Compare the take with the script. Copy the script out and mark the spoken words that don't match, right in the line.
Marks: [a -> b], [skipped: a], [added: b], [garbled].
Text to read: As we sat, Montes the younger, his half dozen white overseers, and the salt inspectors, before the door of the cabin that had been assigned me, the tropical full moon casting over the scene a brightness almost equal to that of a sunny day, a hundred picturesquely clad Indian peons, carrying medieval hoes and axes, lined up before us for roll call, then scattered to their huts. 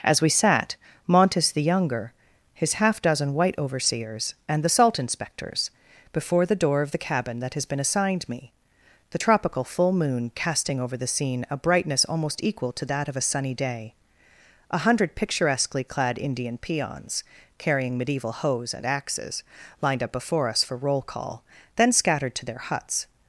As we sat, Montes the younger, his half dozen white overseers, and the salt inspectors, before the door of the cabin that [had -> has] been assigned me, the tropical full moon casting over the scene a brightness almost equal to that of a sunny day, a hundred picturesquely clad Indian peons, carrying medieval hoes and axes, lined up before us for roll call, then scattered to their huts.